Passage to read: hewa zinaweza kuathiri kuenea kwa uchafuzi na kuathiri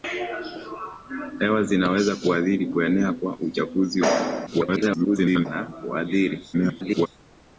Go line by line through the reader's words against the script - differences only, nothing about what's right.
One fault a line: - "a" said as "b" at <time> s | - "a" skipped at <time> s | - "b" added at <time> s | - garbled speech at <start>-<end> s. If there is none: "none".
- garbled speech at 4.5-5.5 s
- garbled speech at 6.5-7.1 s